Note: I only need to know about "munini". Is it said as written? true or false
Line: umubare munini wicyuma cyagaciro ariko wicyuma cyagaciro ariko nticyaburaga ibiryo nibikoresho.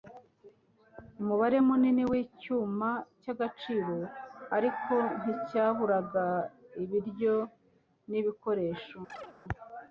true